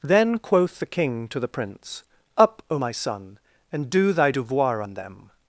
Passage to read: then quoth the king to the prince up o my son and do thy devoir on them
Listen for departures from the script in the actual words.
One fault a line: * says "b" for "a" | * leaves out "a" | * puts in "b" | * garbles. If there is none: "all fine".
all fine